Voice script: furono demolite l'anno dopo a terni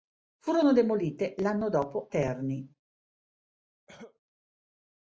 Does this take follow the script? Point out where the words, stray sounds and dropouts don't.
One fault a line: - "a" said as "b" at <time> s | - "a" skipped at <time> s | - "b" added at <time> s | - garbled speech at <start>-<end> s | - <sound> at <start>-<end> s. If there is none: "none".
- "a" skipped at 2.1 s
- cough at 3.9-4.2 s